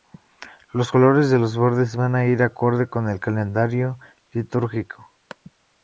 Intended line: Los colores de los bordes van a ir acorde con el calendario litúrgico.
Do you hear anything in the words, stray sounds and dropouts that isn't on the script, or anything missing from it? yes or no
no